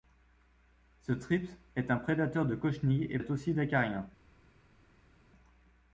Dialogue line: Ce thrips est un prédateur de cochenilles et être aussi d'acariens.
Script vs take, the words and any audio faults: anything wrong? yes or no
no